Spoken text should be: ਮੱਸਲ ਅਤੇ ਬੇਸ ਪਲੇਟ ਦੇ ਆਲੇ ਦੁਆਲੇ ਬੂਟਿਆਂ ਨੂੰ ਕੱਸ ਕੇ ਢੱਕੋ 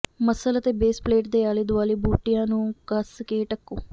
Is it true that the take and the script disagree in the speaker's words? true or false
false